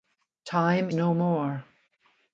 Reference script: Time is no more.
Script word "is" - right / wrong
wrong